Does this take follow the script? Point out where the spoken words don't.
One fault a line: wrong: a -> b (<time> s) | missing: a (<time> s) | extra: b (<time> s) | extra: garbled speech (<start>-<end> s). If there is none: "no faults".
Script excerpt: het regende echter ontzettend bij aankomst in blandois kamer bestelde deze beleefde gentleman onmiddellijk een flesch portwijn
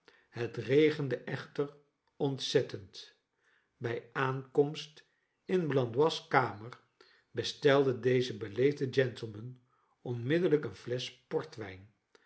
no faults